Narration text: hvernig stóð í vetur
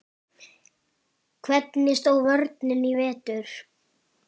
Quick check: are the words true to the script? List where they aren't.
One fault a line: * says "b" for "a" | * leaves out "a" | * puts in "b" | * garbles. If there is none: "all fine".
* puts in "vörnin"